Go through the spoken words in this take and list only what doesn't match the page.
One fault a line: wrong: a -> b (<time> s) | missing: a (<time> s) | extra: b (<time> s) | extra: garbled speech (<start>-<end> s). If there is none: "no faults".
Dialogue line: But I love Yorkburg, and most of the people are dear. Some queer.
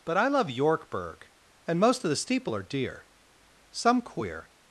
wrong: people -> steeple (2.1 s)